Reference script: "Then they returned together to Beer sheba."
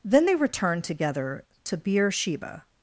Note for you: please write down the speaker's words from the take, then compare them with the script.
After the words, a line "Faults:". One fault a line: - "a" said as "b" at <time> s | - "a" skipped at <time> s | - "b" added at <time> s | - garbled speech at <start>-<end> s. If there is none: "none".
"Then they returned together to Beer sheba."
Faults:
none